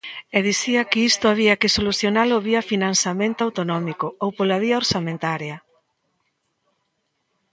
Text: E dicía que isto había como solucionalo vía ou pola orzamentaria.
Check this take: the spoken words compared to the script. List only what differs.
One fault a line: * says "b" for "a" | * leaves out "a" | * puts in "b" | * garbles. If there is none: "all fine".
* says "que" for "como"
* puts in "financiamento autonómico"
* puts in "vía"